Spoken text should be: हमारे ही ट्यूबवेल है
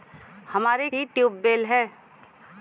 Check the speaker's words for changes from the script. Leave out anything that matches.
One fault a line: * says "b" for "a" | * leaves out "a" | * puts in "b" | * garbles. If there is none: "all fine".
all fine